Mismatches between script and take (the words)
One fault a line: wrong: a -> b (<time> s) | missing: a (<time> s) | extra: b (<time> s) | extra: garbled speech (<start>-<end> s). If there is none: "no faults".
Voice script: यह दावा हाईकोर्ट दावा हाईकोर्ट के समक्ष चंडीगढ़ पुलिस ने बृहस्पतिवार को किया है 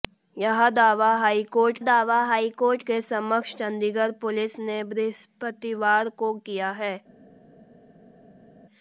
no faults